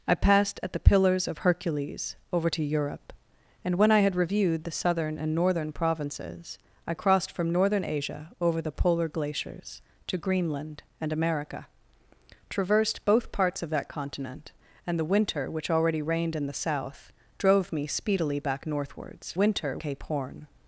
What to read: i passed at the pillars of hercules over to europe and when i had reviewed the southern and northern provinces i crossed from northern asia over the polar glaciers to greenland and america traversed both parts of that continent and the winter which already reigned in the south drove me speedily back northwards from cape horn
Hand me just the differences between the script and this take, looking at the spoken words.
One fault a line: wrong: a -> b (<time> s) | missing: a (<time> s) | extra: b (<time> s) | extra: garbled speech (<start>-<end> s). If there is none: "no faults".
wrong: from -> winter (19.3 s)